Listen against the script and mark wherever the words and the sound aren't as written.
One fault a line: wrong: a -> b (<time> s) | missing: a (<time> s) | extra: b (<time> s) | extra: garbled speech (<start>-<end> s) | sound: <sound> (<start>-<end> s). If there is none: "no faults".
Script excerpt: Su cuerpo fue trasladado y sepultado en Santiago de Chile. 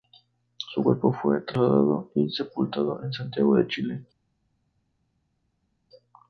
no faults